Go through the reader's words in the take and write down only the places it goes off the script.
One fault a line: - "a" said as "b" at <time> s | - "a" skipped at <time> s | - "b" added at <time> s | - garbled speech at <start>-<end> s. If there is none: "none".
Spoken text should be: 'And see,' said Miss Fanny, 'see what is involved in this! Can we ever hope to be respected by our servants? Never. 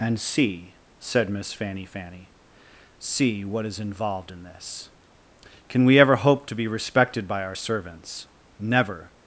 - "Fanny" added at 1.9 s